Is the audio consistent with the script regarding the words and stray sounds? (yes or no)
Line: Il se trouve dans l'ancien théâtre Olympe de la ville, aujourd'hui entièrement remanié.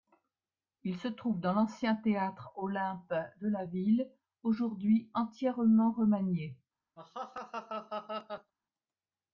no